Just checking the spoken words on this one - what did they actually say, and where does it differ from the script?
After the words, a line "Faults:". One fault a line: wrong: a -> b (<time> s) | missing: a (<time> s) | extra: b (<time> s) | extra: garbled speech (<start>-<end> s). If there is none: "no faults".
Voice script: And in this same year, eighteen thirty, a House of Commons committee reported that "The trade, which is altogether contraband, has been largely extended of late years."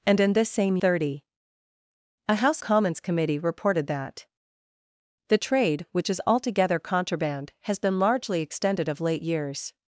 And in this same thirty, a House Commons committee reported that "The trade, which is altogether contraband, has been largely extended of late years."
Faults:
missing: year eighteen (0.8 s)
missing: of (2.6 s)